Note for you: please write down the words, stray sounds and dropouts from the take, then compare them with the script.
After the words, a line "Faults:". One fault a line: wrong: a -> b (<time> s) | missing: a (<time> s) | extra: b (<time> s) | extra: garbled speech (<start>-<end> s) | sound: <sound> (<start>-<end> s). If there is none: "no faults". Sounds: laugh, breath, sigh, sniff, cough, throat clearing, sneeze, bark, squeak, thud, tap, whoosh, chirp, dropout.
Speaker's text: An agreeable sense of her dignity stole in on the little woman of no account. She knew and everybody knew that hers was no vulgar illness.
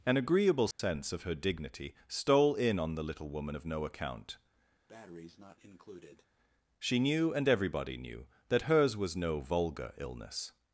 An agreeable sense of her dignity stole in on the little woman of no account. She knew and everybody knew that hers was no vulgar illness.
Faults:
sound: dropout (0.7-0.8 s)
sound: breath (4.9-6.3 s)